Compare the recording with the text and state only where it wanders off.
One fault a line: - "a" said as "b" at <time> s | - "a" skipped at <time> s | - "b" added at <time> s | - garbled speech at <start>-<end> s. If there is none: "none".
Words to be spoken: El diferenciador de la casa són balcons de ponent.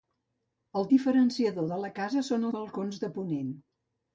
none